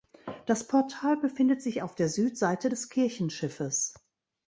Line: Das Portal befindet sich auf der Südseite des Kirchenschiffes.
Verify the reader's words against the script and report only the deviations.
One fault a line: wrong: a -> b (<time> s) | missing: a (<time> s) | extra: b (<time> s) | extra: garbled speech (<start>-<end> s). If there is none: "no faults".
no faults